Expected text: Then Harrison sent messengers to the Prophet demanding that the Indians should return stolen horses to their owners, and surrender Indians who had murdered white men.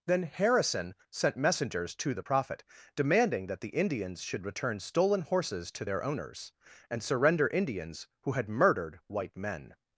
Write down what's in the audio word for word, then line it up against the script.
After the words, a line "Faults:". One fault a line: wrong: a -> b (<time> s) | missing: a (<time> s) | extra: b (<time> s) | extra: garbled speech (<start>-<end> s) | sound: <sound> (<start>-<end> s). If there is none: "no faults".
Then Harrison sent messengers to the Prophet demanding that the Indians should return stolen horses to their owners, and surrender Indians who had murdered white men.
Faults:
no faults